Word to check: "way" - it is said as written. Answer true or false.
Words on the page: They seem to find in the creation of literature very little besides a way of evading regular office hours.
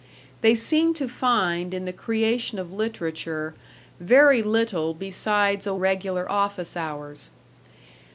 false